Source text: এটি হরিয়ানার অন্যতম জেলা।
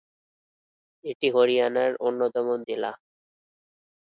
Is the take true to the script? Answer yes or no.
yes